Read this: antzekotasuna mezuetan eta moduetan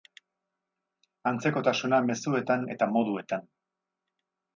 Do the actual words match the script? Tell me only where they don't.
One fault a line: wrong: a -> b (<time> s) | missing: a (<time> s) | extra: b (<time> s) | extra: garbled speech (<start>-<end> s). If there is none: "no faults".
no faults